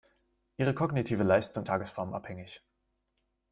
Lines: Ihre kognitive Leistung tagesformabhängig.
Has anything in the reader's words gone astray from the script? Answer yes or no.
no